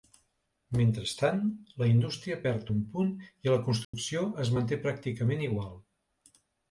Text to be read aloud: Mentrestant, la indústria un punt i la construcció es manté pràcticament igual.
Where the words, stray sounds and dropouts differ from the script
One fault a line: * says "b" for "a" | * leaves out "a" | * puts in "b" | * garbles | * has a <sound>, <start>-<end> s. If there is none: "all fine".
* puts in "perd"
* has a dropout, 3.8-3.9 s